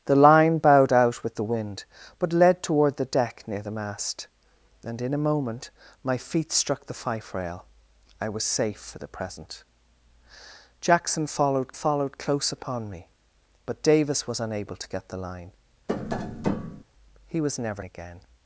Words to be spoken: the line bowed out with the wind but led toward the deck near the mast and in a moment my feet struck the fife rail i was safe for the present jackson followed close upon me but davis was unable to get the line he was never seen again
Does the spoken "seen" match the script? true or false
false